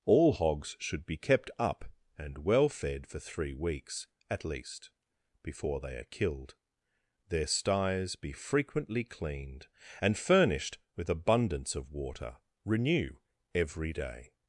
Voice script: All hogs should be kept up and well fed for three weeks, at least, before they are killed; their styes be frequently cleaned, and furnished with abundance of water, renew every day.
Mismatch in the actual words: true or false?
false